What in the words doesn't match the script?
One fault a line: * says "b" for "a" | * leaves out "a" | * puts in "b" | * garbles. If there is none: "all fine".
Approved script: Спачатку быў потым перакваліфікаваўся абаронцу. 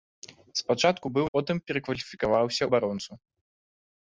all fine